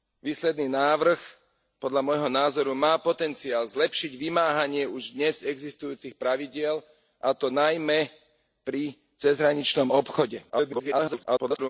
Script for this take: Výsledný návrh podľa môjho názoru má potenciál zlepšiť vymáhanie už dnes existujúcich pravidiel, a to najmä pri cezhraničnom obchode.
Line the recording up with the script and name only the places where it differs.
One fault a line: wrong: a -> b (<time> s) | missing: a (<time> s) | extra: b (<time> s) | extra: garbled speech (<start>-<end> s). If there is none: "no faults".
extra: garbled speech (10.5-11.7 s)